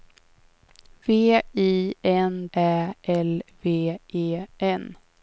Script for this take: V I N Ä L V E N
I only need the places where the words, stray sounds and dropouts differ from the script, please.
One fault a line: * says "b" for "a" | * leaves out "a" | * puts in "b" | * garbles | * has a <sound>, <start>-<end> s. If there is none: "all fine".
all fine